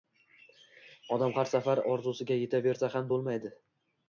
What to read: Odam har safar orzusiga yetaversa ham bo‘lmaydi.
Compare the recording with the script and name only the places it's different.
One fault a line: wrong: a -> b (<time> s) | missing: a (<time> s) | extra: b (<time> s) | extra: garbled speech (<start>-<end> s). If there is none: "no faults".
no faults